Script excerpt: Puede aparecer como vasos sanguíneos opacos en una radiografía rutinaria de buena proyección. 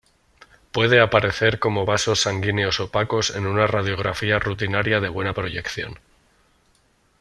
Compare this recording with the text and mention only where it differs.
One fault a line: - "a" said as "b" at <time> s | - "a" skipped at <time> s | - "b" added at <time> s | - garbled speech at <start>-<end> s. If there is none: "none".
none